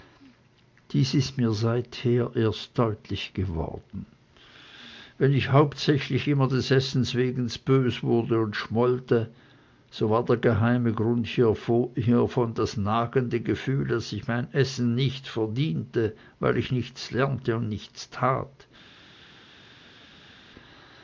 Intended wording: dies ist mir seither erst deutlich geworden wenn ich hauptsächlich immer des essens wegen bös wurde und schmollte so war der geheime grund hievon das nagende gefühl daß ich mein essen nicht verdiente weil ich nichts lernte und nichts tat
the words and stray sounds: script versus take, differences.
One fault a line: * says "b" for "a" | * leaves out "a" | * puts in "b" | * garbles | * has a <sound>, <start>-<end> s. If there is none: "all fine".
all fine